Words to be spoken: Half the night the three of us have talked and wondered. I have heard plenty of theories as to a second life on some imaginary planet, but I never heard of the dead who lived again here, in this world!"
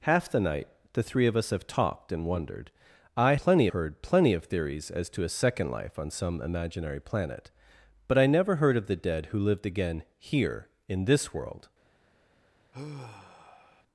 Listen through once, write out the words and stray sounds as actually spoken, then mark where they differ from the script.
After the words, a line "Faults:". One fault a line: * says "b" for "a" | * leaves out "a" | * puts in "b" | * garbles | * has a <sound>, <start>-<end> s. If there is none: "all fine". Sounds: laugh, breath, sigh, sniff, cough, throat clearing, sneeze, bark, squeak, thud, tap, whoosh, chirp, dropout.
Half the night the three of us have talked and wondered. I plenty heard plenty of theories as to a second life on some imaginary planet, but I never heard of the dead who lived again here, in this world!"
Faults:
* says "plenty" for "have"
* has a sigh, 12.7-13.8 s